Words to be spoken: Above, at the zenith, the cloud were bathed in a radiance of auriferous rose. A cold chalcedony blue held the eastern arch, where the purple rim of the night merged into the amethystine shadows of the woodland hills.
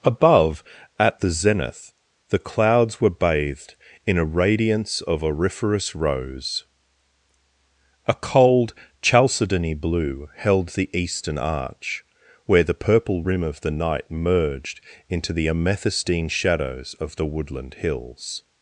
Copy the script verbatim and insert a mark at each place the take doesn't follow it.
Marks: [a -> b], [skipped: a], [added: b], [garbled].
Above, at the zenith, the [cloud -> clouds] were bathed in a radiance of auriferous rose. A cold chalcedony blue held the eastern arch, where the purple rim of the night merged into the amethystine shadows of the woodland hills.